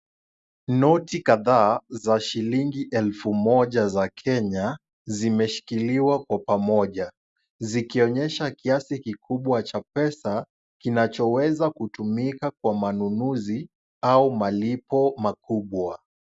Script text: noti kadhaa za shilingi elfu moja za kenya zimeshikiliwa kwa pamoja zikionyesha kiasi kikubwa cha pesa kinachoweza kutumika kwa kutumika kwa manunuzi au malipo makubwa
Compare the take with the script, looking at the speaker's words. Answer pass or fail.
fail